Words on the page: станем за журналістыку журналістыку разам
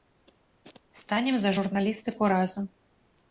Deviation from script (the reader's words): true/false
true